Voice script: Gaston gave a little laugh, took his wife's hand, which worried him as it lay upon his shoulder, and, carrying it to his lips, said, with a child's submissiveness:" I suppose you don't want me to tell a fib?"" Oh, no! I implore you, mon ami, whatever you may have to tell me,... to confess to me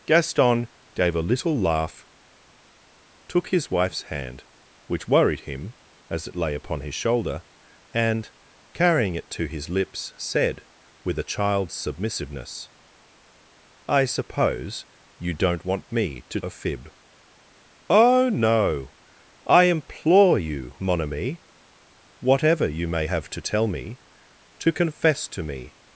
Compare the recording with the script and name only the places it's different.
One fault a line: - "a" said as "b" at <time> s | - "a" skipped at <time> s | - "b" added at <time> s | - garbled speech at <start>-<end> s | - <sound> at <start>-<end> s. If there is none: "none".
- "tell" skipped at 16.4 s